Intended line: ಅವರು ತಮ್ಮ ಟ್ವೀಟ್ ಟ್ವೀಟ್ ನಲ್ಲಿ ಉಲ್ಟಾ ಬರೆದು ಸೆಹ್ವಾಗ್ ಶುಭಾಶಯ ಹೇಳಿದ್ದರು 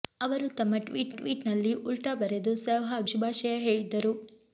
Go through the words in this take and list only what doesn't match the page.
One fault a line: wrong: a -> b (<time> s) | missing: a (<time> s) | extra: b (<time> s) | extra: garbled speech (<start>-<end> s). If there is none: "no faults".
no faults